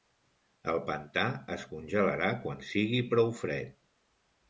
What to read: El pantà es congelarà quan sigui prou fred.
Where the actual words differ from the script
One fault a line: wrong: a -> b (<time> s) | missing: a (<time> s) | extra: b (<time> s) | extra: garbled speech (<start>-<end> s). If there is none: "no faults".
no faults